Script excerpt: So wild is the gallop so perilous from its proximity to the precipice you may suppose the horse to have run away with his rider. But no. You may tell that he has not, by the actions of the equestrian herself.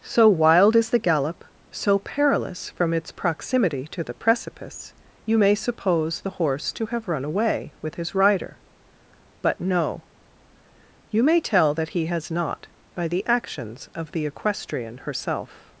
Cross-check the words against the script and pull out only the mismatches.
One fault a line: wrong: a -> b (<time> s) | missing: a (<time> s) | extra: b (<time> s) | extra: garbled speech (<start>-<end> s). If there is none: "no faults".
no faults